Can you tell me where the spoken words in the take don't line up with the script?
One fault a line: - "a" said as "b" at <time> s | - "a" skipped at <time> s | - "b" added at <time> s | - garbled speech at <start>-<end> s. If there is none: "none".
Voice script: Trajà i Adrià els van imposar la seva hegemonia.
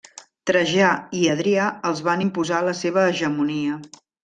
none